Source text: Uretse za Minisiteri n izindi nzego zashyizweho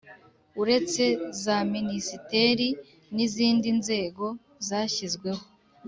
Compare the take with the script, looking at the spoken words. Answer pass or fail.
pass